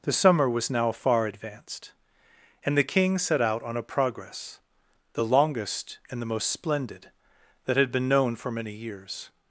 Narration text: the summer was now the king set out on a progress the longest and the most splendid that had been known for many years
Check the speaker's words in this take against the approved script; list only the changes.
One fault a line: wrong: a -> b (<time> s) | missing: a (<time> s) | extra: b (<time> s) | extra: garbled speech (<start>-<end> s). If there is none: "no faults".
extra: far advanced and (0.9 s)